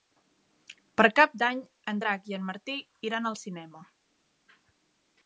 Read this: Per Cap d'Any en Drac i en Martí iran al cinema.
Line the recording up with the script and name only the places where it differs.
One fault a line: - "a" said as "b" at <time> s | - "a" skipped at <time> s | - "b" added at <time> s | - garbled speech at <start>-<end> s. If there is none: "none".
none